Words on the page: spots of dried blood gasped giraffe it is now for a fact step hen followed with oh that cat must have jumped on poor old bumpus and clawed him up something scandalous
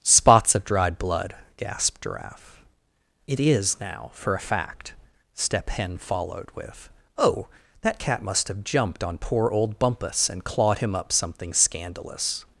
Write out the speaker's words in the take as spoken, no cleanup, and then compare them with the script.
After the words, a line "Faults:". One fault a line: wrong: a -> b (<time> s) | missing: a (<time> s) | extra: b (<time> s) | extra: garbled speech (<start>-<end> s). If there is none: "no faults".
spots of dried blood gasped giraffe it is now for a fact step hen followed with oh that cat must have jumped on poor old bumpus and clawed him up something scandalous
Faults:
no faults